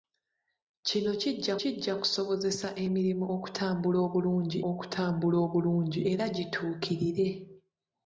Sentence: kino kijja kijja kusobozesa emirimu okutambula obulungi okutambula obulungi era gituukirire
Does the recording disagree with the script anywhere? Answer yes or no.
no